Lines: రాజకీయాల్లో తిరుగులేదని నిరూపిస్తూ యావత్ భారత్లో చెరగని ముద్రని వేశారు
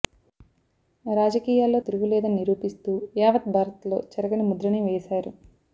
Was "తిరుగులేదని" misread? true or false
false